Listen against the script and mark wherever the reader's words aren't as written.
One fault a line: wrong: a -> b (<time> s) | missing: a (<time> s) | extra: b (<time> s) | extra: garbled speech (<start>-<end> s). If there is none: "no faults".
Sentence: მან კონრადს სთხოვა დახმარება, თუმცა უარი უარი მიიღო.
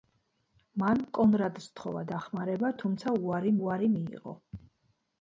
no faults